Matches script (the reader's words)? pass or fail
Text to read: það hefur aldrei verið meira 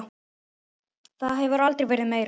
pass